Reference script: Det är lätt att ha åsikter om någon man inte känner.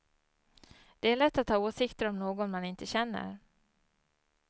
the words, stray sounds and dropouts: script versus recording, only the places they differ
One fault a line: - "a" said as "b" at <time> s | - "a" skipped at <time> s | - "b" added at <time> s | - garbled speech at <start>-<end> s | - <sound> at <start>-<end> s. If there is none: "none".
none